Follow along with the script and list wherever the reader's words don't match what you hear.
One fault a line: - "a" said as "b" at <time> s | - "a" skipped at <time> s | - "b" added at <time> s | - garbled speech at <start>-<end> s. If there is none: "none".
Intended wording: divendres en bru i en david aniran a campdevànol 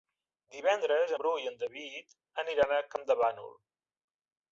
- "en" skipped at 1.1 s